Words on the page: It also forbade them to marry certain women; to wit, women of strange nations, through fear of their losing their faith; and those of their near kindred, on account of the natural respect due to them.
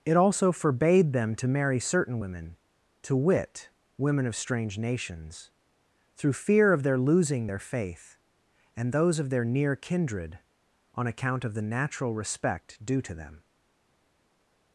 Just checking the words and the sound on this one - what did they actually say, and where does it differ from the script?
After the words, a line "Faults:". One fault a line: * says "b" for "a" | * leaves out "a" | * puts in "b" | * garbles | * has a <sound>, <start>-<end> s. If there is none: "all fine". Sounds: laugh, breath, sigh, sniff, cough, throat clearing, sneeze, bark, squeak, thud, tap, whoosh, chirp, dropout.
It also forbade them to marry certain women; to wit, women of strange nations, through fear of their losing their faith; and those of their near kindred, on account of the natural respect due to them.
Faults:
all fine